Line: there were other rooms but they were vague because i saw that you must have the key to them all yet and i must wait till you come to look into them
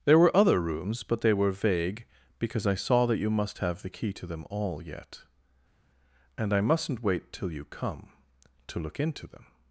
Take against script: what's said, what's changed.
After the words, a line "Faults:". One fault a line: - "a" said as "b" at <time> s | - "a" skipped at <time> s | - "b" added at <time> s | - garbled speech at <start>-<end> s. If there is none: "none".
there were other rooms but they were vague because i saw that you must have the key to them all yet and i mustn't wait till you come to look into them
Faults:
- "must" said as "mustn't" at 6.6 s